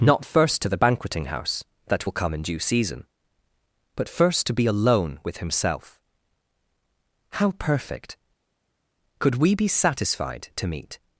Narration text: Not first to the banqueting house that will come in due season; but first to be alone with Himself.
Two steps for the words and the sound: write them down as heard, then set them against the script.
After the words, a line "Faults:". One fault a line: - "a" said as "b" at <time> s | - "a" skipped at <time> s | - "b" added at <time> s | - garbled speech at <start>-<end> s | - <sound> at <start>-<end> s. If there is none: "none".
Not first to the banqueting house that will come in due season; but first to be alone with Himself. How perfect! Could we be satisfied to meet
Faults:
- "How perfect Could we be satisfied to meet" added at 7.3 s